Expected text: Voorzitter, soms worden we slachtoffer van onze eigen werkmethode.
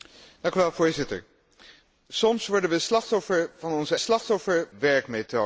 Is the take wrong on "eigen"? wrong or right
wrong